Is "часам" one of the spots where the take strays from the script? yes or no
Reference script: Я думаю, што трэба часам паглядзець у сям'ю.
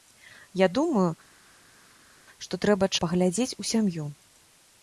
yes